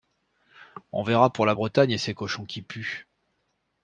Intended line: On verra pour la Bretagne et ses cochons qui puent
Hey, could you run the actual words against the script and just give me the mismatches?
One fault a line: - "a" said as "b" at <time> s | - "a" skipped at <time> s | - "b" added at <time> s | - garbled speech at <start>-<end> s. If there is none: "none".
none